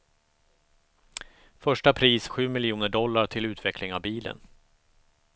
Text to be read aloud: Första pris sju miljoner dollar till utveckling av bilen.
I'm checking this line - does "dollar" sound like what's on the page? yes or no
yes